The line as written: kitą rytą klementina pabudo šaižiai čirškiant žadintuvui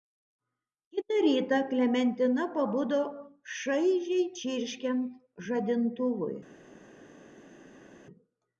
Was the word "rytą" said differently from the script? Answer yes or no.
no